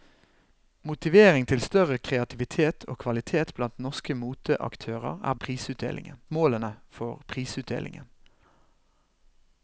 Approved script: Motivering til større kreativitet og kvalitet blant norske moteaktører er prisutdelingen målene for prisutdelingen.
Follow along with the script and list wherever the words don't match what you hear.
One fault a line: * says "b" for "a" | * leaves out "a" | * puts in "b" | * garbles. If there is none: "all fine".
all fine